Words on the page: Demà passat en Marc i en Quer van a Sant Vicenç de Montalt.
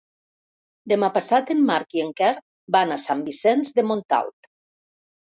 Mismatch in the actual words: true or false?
false